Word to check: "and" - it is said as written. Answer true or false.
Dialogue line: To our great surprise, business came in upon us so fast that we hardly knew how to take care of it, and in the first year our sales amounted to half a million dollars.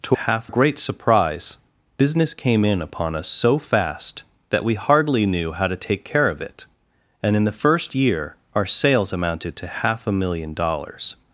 true